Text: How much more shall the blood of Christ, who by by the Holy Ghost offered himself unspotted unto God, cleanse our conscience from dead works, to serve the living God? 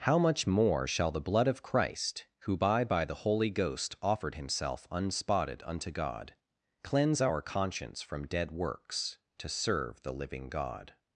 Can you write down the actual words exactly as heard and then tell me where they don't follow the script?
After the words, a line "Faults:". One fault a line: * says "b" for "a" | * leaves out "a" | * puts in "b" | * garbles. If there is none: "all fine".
How much more shall the blood of Christ, who by by the Holy Ghost offered himself unspotted unto God, cleanse our conscience from dead works, to serve the living God?
Faults:
all fine